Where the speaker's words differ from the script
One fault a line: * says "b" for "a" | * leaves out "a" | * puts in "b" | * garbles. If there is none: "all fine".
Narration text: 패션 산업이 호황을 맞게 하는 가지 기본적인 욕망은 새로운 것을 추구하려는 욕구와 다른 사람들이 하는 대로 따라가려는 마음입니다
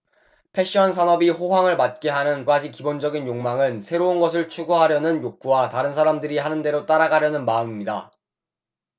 all fine